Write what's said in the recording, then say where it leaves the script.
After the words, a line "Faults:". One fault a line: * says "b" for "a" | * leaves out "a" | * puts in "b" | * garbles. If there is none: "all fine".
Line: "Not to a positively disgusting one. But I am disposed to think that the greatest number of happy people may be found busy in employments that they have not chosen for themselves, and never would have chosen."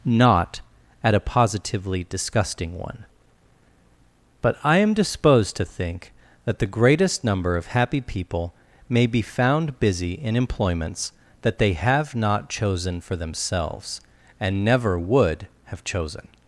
"Not at a positively disgusting one. But I am disposed to think that the greatest number of happy people may be found busy in employments that they have not chosen for themselves, and never would have chosen."
Faults:
* says "at" for "to"